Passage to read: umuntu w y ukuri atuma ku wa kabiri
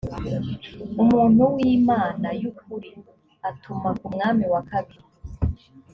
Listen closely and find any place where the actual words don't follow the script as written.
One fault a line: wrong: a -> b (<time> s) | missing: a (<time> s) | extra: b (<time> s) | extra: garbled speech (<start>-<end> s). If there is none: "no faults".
extra: imana (1.8 s)
extra: mwami (4.1 s)